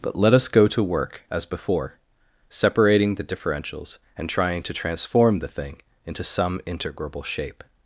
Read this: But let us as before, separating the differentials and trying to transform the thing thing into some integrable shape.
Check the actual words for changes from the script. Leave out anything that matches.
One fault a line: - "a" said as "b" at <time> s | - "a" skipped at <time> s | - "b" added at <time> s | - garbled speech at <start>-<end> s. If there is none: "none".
- "go to work" added at 0.5 s
- "thing" skipped at 5.8 s